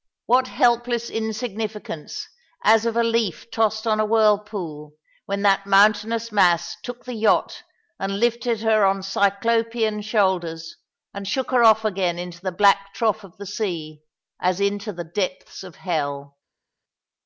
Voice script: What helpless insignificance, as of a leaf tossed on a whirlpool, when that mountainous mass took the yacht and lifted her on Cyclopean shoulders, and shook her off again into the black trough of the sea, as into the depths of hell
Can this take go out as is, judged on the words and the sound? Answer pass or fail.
pass